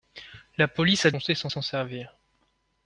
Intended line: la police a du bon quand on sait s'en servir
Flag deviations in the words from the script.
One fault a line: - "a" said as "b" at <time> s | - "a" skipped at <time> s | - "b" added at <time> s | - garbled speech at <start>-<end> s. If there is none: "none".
- "du bon quand" skipped at 1.1 s
- "s'en" added at 1.5 s